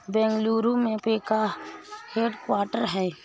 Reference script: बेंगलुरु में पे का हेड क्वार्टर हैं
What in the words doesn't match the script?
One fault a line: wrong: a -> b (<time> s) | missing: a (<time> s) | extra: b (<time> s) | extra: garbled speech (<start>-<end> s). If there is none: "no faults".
no faults